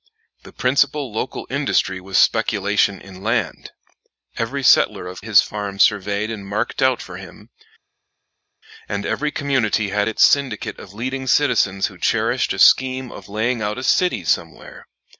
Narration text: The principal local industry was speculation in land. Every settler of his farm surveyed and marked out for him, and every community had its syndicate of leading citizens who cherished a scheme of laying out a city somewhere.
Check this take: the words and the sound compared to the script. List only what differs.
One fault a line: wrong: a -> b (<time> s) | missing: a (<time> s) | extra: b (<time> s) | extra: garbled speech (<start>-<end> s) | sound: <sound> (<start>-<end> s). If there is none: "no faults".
no faults